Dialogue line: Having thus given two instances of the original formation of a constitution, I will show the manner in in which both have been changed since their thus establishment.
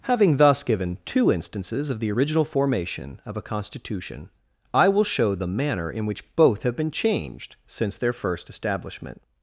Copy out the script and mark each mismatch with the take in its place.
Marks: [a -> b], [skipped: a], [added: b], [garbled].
Having thus given two instances of the original formation of a constitution, I will show the manner in [skipped: in] which both have been changed since their [thus -> first] establishment.